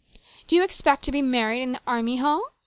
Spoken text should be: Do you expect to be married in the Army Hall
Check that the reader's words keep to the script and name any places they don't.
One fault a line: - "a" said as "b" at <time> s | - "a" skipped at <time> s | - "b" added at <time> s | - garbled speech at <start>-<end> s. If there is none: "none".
none